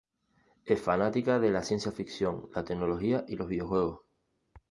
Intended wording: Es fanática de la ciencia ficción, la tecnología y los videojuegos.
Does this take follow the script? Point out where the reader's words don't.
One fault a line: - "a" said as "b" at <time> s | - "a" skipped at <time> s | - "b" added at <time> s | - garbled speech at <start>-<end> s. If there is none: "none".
none